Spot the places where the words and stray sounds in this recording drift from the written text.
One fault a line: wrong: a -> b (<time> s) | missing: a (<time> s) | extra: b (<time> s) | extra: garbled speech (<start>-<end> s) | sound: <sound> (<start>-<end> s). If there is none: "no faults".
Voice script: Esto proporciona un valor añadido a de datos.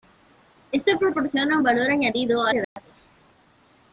sound: dropout (2.6-2.8 s)